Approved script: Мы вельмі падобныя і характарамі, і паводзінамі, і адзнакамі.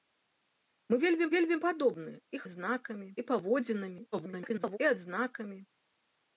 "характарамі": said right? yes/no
no